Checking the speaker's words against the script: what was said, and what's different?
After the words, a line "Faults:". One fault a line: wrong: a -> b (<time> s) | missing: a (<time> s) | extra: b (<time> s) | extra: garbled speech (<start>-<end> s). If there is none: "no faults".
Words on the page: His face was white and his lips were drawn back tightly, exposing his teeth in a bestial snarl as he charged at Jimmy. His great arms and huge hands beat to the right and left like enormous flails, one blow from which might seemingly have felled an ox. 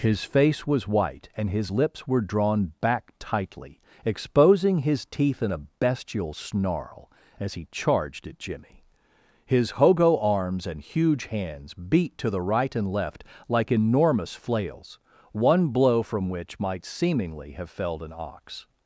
His face was white and his lips were drawn back tightly, exposing his teeth in a bestial snarl as he charged at Jimmy. His hogo arms and huge hands beat to the right and left like enormous flails, one blow from which might seemingly have felled an ox.
Faults:
wrong: great -> hogo (9.7 s)